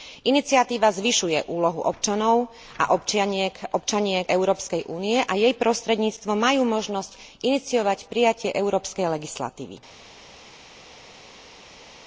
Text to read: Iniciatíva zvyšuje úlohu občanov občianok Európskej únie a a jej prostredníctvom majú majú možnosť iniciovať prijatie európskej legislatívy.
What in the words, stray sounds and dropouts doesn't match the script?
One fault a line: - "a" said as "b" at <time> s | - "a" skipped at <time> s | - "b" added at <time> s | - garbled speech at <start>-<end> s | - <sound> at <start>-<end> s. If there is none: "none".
- "a" added at 2.8 s
- "a" skipped at 5.3 s
- "majú" skipped at 6.6 s